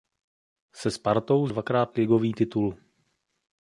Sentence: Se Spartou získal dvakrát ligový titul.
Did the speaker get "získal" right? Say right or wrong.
wrong